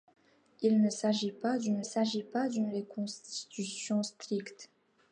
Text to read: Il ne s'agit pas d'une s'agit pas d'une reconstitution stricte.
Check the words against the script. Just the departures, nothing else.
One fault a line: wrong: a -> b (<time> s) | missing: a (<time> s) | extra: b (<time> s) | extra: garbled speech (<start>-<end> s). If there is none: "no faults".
no faults